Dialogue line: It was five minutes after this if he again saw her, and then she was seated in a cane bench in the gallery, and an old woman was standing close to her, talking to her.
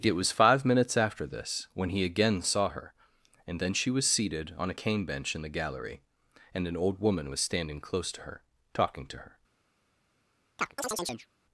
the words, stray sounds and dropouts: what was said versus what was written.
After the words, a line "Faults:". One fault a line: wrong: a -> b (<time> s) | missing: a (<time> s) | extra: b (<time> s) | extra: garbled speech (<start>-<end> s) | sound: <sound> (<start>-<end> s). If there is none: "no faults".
It was five minutes after this when he again saw her, and then she was seated on a cane bench in the gallery, and an old woman was standing close to her, talking to her.
Faults:
wrong: if -> when (1.8 s)
wrong: in -> on (4.6 s)
sound: chirp (10.6-11.3 s)